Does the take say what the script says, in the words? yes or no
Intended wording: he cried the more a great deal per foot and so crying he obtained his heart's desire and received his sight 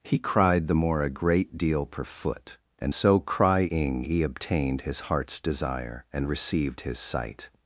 yes